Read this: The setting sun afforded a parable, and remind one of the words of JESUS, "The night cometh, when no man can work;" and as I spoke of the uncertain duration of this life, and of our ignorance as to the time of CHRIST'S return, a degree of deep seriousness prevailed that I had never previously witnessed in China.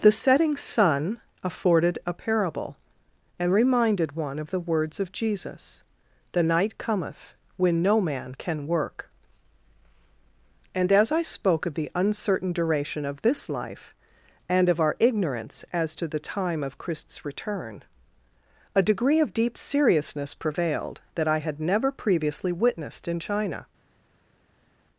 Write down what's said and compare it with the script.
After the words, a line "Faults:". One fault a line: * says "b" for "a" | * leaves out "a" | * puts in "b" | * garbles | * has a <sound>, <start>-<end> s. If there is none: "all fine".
The setting sun afforded a parable, and reminded one of the words of JESUS, "The night cometh, when no man can work;" and as I spoke of the uncertain duration of this life, and of our ignorance as to the time of CHRIST'S return, a degree of deep seriousness prevailed that I had never previously witnessed in China.
Faults:
* says "reminded" for "remind"